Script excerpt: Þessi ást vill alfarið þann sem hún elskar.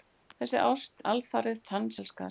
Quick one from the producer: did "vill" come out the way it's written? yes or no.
no